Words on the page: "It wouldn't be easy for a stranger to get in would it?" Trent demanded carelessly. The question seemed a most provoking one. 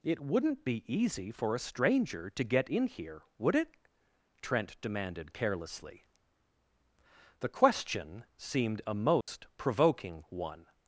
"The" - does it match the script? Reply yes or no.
yes